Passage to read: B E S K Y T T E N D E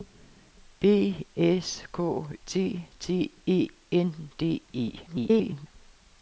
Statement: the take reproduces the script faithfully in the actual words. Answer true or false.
false